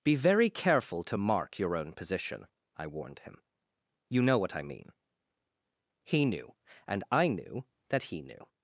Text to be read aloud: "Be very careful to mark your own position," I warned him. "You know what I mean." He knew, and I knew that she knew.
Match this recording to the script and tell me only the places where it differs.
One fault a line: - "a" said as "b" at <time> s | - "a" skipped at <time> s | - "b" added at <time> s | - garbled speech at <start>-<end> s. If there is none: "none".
- "she" said as "he" at 8.0 s